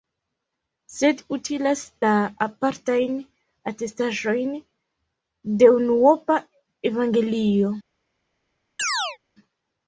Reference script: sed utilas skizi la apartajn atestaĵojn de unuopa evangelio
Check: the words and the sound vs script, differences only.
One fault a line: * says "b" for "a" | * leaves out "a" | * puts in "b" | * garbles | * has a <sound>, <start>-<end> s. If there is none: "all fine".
* leaves out "skizi"
* has a chirp, 8.8-9.2 s